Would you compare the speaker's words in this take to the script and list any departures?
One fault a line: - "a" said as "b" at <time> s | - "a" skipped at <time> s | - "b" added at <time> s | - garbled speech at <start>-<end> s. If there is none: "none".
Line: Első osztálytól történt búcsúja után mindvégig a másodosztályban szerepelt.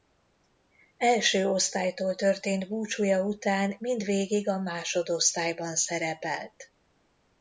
none